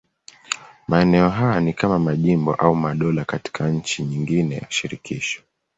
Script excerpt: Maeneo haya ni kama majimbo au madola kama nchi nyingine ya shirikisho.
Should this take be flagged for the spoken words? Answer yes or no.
yes